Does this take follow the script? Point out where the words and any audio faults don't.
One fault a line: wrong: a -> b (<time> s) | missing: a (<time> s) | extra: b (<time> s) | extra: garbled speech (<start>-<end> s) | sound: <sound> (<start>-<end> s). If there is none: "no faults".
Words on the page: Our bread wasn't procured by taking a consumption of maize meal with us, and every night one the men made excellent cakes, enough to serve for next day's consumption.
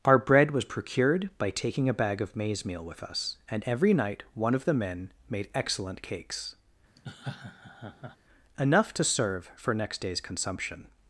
wrong: wasn't -> was (0.5 s)
wrong: consumption -> bag (1.9 s)
extra: of (4.5 s)
sound: laugh (7.0-8.2 s)